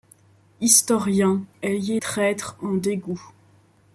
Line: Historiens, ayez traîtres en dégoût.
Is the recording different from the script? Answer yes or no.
no